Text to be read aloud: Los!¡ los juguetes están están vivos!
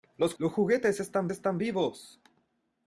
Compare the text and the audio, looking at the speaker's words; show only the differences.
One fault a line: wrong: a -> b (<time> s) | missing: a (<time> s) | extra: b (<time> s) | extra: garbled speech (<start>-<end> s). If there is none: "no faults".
no faults